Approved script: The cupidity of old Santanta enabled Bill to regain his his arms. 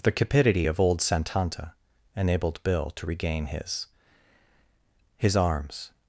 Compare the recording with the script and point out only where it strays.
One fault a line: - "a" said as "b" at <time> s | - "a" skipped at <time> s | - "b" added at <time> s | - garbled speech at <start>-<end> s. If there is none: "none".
none